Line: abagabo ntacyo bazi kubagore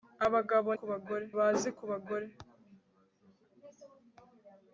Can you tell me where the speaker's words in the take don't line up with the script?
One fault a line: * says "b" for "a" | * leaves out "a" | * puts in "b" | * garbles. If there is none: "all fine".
* says "kubagore" for "ntacyo"